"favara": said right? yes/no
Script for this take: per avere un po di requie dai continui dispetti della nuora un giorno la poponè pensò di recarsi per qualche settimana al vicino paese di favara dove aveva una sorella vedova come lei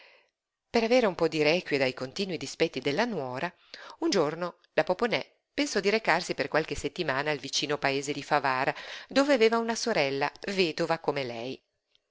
yes